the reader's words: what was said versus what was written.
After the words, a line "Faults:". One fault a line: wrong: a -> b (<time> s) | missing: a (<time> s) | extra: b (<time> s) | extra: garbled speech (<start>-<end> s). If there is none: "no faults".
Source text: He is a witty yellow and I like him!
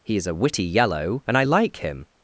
He is a witty yellow and I like him!
Faults:
no faults